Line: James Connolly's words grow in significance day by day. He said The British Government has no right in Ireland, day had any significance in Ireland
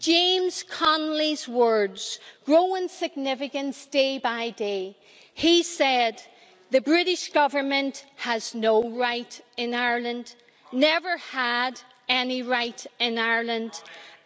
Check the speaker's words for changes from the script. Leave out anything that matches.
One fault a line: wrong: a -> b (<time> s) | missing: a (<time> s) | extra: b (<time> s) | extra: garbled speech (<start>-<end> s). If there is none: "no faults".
wrong: day -> never (10.7 s)
wrong: significance -> right (12.4 s)